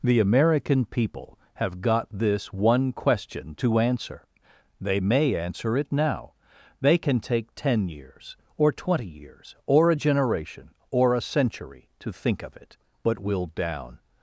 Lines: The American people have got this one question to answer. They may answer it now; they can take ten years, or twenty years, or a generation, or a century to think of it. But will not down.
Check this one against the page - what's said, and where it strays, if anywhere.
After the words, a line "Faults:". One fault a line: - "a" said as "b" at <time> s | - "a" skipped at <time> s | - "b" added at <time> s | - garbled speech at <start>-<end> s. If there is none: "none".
The American people have got this one question to answer. They may answer it now; they can take ten years, or twenty years, or a generation, or a century to think of it. But will down.
Faults:
- "not" skipped at 13.5 s